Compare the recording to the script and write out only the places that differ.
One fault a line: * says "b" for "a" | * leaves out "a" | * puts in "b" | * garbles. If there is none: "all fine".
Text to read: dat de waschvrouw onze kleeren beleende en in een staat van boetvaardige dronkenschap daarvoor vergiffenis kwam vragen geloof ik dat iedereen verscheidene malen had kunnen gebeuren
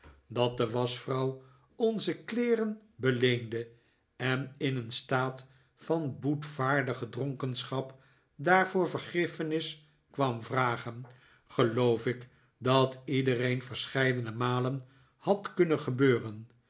all fine